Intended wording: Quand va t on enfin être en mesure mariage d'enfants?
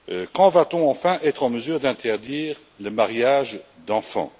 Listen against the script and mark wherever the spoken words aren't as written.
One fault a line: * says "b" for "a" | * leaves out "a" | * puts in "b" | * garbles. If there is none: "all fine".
* puts in "d'interdire le"